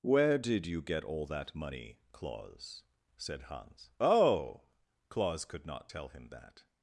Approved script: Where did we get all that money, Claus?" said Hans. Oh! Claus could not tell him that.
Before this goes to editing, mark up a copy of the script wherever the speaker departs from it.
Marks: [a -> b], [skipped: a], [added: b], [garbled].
Where did [we -> you] get all that money, Claus?" said Hans. Oh! Claus could not tell him that.